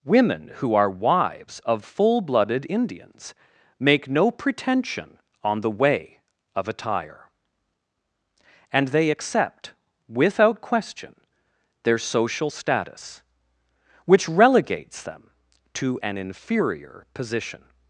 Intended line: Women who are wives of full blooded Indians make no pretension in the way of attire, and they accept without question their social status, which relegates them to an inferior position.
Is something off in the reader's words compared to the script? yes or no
yes